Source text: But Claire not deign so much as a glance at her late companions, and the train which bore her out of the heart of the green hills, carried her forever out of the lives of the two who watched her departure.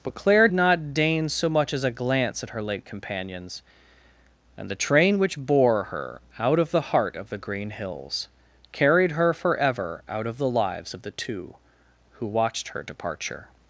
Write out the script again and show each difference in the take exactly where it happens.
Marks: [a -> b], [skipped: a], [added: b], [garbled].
But Claire not deign so much as a glance at her late companions, and the train which bore her out of the heart of the green hills, carried her forever out of the lives of the two who watched her departure.